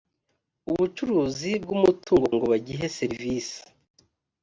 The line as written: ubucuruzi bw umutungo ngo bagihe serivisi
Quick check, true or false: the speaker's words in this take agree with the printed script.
true